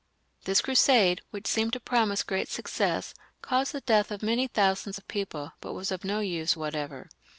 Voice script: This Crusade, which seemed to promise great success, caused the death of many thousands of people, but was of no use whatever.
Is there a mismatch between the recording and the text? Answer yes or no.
no